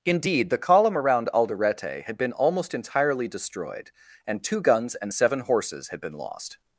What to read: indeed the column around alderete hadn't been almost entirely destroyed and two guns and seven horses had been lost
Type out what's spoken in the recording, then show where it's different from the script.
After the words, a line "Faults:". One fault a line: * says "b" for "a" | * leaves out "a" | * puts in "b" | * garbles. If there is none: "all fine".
indeed the column around alderete had been almost entirely destroyed and two guns and seven horses had been lost
Faults:
* says "had" for "hadn't"